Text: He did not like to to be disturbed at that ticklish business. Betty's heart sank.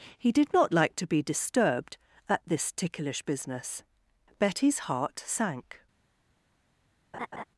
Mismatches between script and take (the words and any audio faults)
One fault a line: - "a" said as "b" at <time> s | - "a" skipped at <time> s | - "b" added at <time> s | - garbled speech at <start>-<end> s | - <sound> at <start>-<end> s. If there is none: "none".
- "to" skipped at 1.1 s
- "that" said as "this" at 2.5 s
- laugh at 7.1-7.4 s